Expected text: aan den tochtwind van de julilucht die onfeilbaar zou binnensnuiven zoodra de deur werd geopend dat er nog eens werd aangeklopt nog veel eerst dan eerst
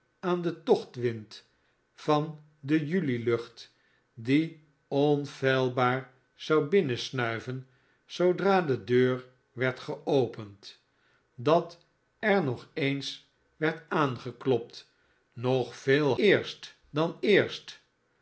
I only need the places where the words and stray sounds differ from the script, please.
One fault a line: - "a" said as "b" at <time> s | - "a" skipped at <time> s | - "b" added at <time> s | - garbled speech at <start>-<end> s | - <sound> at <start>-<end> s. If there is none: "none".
none